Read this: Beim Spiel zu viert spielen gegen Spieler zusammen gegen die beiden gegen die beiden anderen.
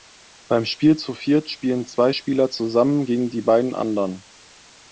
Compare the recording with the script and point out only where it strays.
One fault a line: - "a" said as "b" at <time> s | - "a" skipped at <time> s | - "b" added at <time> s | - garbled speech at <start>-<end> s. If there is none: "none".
- "gegen" said as "zwei" at 1.9 s
- "gegen die beiden" skipped at 3.7 s